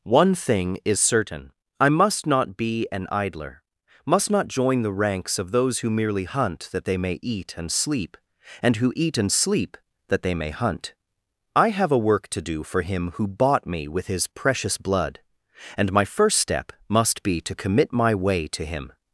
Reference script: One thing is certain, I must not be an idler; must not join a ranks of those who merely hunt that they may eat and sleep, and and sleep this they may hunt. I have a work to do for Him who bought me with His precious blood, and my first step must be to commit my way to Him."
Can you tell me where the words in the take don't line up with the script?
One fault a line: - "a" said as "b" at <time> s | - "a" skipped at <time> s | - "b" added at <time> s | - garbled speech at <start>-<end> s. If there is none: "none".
- "a" said as "the" at 4.8 s
- "who eat" added at 8.8 s
- "this" said as "that" at 10.1 s